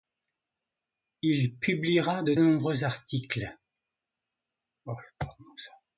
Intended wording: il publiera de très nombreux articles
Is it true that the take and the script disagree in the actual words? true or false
true